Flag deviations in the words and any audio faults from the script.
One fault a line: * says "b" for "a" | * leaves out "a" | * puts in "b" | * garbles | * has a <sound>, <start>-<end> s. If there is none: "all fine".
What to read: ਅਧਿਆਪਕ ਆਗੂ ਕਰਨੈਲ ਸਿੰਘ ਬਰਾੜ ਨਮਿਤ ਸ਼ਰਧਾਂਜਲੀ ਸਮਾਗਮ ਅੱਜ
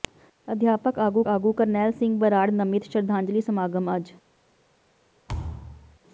* puts in "ਆਗੂ"
* has a thud, 5.3-6.0 s